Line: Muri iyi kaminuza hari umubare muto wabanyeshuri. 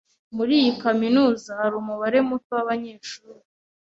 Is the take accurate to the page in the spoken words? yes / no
yes